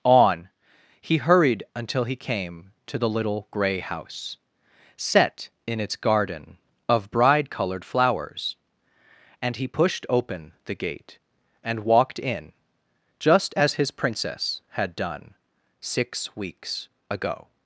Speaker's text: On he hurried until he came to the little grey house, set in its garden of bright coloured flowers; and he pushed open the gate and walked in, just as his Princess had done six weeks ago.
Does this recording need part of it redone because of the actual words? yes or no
yes